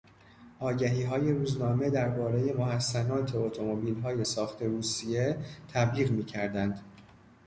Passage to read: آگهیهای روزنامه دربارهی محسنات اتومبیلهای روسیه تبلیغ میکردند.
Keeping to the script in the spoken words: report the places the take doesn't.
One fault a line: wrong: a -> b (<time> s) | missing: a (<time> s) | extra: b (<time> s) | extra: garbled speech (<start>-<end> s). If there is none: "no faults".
extra: ساخت (4.2 s)